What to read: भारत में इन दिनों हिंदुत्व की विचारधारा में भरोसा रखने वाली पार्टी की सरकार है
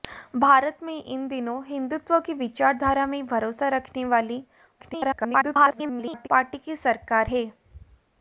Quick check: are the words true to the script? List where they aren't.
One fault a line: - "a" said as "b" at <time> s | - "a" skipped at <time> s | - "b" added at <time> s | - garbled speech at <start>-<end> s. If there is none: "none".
- garbled speech at 4.8-6.3 s